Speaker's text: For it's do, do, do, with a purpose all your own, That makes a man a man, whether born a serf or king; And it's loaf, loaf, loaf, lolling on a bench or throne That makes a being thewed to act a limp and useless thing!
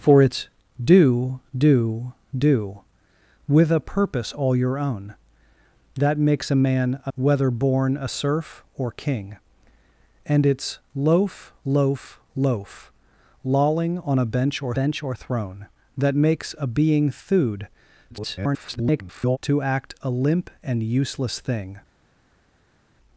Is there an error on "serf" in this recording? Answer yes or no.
no